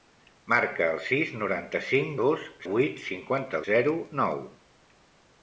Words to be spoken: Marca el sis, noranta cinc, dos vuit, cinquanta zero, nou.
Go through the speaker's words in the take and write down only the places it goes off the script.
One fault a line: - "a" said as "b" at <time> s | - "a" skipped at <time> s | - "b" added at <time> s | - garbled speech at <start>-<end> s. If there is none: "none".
none